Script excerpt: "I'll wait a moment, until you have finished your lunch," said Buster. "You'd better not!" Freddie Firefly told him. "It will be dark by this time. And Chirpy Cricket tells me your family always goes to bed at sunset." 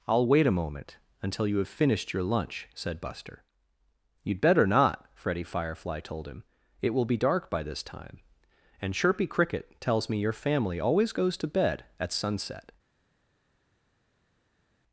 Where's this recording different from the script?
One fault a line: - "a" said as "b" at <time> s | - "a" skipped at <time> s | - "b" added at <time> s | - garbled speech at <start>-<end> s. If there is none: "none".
none